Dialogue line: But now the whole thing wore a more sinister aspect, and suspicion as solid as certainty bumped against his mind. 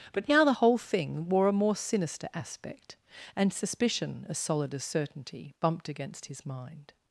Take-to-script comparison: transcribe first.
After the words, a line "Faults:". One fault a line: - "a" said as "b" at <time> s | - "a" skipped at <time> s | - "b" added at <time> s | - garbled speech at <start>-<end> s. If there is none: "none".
But now the whole thing wore a more sinister aspect, and suspicion as solid as certainty bumped against his mind.
Faults:
none